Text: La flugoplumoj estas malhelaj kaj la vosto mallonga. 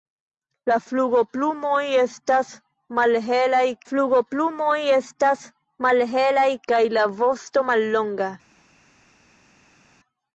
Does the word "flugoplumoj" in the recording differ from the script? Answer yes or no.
no